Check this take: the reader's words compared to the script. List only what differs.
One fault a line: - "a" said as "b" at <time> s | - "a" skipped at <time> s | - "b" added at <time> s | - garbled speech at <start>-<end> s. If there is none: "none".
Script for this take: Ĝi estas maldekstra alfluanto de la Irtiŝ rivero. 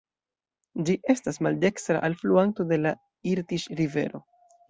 none